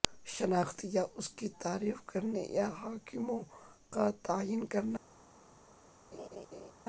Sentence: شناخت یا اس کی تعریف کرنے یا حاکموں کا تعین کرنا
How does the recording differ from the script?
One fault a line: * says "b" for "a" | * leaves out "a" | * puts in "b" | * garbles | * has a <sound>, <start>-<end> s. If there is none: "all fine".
* has a laugh, 6.1-6.7 s